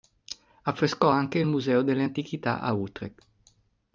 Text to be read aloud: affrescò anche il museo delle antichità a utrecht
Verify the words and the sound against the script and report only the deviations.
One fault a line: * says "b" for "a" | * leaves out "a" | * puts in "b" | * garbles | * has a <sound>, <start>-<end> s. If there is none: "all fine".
all fine